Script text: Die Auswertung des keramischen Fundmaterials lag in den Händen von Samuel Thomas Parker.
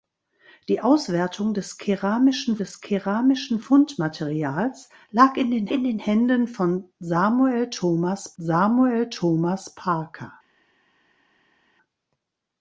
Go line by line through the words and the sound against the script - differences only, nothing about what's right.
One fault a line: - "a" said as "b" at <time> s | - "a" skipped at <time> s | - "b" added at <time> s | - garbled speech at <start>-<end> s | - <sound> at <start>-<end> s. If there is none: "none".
- "des keramischen" added at 2.6 s
- "in den" added at 5.7 s
- "Samuel Thomas" added at 8.4 s